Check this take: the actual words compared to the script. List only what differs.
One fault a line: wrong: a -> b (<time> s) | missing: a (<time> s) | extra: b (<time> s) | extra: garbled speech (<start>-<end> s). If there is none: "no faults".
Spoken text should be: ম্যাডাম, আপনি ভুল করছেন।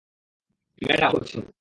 missing: আপনি ভুল (1.1 s)